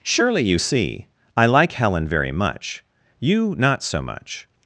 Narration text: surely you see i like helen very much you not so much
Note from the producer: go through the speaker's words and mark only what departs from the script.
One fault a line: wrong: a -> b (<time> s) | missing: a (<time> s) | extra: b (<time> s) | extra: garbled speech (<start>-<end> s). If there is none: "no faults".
no faults